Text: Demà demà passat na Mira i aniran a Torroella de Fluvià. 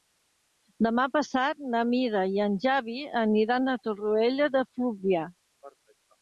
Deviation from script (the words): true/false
true